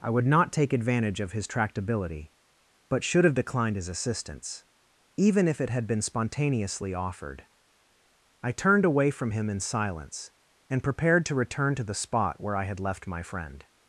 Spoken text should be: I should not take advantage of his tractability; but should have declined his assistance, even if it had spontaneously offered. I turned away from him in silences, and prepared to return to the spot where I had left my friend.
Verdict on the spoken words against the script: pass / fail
fail